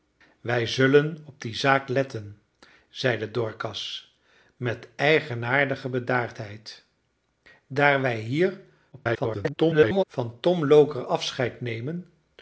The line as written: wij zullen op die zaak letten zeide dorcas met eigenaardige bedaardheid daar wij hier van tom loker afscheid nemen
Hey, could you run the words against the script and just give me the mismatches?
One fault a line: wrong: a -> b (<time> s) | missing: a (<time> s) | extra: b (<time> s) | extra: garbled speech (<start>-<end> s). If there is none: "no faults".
extra: garbled speech (8.9-10.0 s)